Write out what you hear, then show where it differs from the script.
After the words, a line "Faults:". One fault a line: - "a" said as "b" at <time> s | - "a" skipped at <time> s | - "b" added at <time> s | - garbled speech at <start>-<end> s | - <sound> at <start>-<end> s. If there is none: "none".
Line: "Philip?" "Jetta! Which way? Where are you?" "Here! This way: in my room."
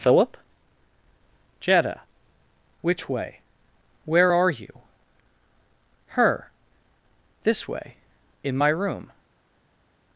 "Philip?" "Jetta! Which way? Where are you?" "Her! This way: in my room."
Faults:
- "Here" said as "Her" at 6.1 s